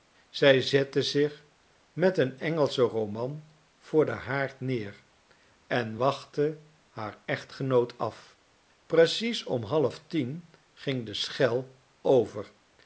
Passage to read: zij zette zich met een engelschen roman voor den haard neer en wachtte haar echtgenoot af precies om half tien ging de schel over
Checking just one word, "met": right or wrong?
right